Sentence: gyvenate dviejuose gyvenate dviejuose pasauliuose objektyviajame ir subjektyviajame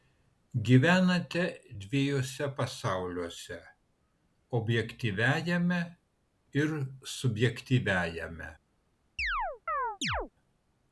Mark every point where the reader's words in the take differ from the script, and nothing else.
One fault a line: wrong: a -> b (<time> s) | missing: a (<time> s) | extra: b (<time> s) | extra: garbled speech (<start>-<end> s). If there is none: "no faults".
missing: gyvenate dviejuose (2.5 s)